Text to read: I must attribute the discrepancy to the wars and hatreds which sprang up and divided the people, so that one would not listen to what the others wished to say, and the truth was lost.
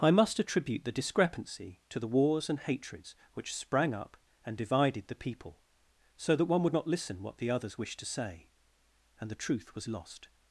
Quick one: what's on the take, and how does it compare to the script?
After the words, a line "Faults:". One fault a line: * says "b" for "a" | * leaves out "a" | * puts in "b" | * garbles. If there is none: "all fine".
I must attribute the discrepancy to the wars and hatreds which sprang up and divided the people, so that one would not listen what the others wished to say, and the truth was lost.
Faults:
* leaves out "to"